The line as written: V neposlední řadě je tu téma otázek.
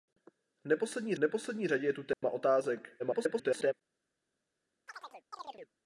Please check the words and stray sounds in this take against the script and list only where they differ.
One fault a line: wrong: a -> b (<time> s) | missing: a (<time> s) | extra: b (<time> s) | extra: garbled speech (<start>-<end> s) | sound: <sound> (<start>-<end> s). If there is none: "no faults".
extra: neposlední (1.2 s)
sound: dropout (2.1-2.2 s)
extra: garbled speech (3.0-3.7 s)
sound: chirp (4.9-5.7 s)